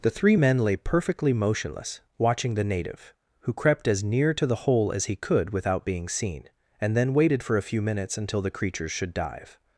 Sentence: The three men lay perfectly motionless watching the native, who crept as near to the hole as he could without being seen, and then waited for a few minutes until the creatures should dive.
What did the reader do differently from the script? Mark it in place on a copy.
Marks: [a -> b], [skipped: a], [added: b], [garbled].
The three men lay perfectly motionless watching the native, who crept as near to the hole as he could without being seen, and then waited for a few minutes until the creatures should dive.